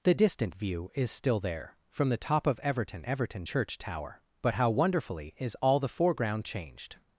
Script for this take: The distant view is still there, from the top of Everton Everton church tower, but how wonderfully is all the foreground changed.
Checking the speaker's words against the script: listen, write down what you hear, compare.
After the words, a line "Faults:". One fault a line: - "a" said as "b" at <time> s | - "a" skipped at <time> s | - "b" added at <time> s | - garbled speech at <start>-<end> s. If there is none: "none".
The distant view is still there, from the top of Everton Everton church tower, but how wonderfully is all the foreground changed.
Faults:
none